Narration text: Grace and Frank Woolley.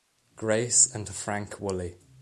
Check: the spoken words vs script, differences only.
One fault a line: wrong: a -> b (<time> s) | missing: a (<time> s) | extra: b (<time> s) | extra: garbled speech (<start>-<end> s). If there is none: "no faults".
no faults